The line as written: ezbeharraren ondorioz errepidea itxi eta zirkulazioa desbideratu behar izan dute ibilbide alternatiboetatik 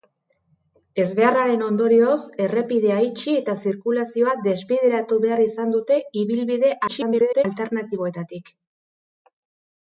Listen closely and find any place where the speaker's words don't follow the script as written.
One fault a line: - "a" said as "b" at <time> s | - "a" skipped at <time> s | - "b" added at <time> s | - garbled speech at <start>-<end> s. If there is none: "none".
- garbled speech at 6.9-7.4 s